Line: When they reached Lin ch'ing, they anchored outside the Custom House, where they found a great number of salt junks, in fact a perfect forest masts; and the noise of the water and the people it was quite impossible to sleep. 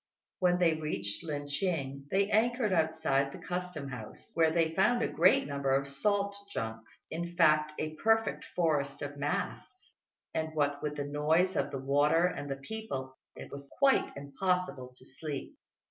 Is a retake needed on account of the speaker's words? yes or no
yes